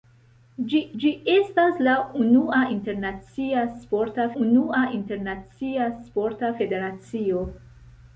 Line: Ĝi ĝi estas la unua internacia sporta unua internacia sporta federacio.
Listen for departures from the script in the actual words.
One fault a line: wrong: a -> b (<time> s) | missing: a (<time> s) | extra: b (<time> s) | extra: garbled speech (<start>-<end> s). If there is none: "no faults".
no faults